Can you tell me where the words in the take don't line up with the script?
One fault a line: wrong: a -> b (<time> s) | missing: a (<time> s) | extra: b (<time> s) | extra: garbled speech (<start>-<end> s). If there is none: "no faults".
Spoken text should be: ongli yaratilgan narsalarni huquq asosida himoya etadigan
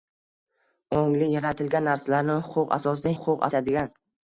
wrong: himoya -> huquq (3.2 s)